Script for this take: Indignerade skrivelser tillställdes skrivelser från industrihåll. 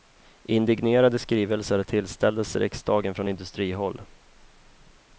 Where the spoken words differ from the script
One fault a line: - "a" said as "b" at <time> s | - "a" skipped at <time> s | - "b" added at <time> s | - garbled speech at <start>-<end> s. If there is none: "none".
- "skrivelser" said as "riksdagen" at 2.6 s